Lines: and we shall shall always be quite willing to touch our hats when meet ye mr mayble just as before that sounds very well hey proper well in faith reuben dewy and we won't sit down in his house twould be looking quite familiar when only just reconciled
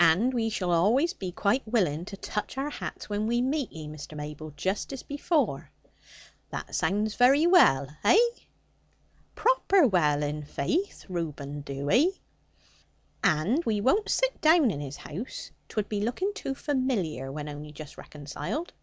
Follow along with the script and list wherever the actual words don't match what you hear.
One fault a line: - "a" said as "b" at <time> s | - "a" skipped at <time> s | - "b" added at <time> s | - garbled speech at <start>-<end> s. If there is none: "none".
- "shall" skipped at 0.7 s
- "we" added at 3.3 s
- "quite" said as "too" at 16.3 s